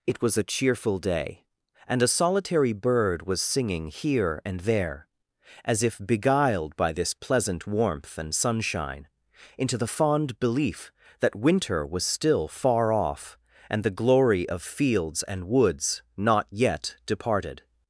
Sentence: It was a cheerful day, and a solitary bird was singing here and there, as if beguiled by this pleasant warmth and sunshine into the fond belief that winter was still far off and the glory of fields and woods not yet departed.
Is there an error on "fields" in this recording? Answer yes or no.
no